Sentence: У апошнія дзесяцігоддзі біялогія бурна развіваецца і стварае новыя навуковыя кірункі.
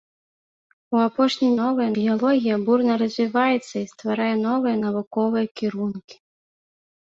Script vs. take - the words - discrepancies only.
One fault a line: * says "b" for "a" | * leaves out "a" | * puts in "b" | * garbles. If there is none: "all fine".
* says "новыя" for "дзесяцігоддзі"